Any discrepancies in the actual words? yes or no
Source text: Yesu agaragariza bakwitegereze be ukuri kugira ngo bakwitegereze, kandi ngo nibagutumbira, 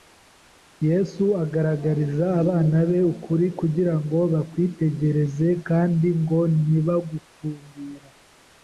yes